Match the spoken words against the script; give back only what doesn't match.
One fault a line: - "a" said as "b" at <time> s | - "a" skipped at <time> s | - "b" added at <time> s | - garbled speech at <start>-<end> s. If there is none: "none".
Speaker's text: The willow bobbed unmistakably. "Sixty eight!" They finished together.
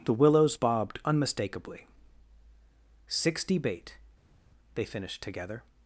- "willow" said as "willows" at 0.1 s
- "eight" said as "bait" at 3.6 s